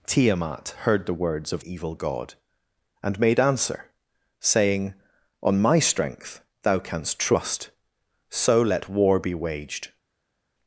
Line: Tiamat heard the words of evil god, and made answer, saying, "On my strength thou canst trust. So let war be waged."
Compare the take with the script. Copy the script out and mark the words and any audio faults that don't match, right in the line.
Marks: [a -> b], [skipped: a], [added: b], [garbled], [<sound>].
Tiamat heard the words of evil god, and made answer, saying, "On my strength thou canst trust. So let war be waged."